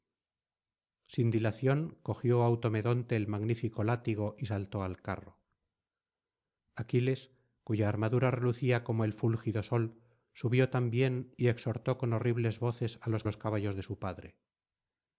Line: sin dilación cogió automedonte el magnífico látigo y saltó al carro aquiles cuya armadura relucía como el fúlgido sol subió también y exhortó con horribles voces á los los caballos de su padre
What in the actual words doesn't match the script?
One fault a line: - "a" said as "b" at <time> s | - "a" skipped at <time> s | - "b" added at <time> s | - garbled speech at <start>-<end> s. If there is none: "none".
none